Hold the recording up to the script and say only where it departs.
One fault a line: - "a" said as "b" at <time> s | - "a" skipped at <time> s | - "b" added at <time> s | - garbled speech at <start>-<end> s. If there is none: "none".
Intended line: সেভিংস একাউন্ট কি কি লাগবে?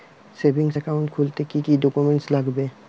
- "খুলতে" added at 1.1 s
- "ডকুমেন্টস" added at 1.8 s